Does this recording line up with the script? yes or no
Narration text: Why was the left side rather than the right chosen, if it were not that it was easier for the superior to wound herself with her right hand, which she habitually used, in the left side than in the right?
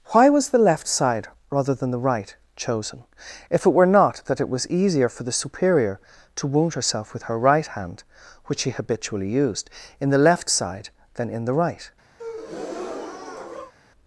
yes